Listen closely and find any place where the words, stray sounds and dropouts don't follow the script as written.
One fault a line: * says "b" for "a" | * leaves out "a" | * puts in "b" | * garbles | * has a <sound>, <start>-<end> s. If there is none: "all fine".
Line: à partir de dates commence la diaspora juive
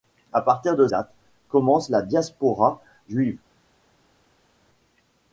all fine